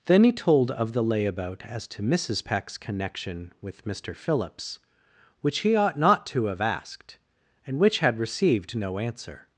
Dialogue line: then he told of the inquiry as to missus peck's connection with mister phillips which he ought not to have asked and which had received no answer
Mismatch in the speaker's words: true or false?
true